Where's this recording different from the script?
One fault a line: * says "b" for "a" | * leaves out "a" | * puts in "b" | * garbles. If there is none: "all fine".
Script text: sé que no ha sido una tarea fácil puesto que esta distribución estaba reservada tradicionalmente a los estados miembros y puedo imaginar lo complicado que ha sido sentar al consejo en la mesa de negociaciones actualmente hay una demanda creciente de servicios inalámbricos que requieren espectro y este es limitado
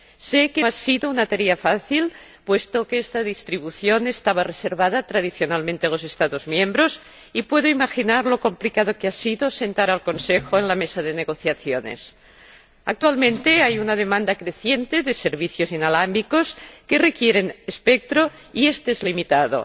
* leaves out "no"